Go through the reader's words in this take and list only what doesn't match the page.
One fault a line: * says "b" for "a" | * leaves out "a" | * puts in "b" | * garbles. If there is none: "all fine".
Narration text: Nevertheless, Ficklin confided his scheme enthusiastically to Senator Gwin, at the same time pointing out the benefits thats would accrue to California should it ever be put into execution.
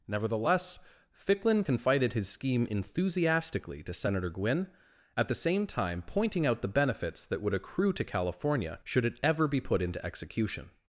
* says "that" for "thats"